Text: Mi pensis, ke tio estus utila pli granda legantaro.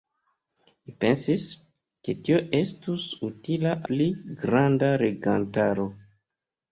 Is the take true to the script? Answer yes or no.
yes